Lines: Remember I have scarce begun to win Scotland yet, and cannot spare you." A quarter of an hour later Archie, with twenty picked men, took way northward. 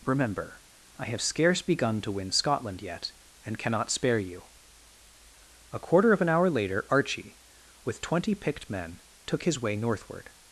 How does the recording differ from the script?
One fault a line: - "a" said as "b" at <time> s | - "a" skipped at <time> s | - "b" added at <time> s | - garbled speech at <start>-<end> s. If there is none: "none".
- "his" added at 9.4 s